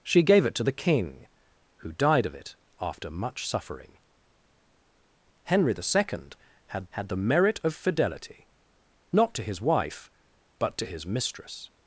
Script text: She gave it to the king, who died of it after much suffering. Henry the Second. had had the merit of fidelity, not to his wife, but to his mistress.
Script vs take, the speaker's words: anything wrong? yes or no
no